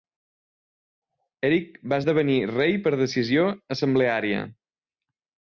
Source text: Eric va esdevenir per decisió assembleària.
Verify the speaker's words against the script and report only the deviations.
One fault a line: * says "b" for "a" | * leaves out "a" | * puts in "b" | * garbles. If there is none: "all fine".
* puts in "rei"